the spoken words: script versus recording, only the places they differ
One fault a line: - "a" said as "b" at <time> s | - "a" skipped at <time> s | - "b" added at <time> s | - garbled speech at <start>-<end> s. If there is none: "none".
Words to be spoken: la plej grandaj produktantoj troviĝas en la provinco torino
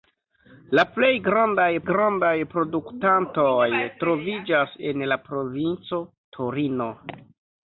- "grandaj" added at 1.9 s